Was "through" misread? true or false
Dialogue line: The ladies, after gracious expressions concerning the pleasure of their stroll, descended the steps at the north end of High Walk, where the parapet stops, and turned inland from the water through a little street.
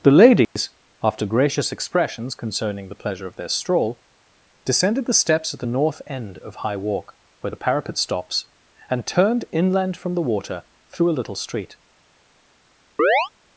false